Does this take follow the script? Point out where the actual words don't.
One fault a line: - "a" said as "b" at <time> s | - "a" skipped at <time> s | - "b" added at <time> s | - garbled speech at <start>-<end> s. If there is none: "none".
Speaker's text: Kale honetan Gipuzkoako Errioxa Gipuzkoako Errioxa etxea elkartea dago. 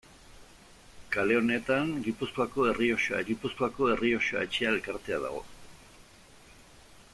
none